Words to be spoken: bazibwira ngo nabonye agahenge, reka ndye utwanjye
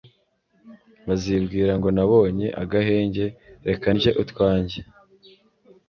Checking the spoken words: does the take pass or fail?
pass